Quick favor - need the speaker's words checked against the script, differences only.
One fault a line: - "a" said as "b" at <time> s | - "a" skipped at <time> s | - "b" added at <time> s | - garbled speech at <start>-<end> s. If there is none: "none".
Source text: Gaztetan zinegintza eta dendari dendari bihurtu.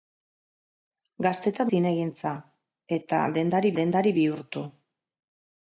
none